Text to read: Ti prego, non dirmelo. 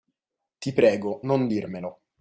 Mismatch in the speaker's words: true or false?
false